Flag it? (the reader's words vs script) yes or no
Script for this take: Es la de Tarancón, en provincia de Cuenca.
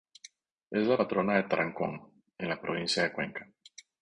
yes